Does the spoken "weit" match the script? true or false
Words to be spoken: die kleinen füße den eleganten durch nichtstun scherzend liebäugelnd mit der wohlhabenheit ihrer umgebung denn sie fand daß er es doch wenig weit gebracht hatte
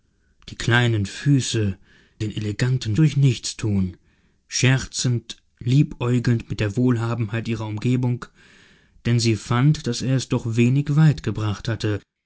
true